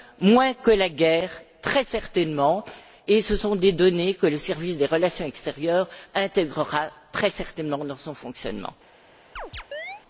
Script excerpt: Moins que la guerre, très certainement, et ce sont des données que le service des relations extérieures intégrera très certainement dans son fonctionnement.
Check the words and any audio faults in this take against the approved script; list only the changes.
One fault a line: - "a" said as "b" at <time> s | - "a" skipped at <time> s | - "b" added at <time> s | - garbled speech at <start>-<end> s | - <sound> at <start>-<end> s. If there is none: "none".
- chirp at 9.4-10.0 s